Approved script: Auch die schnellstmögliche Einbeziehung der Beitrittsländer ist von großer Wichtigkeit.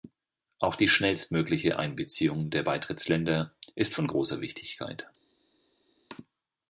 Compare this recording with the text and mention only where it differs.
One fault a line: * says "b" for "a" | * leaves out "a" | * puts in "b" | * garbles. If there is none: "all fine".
all fine